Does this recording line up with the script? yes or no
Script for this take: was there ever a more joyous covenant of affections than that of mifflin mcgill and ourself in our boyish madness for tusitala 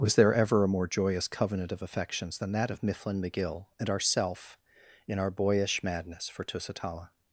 yes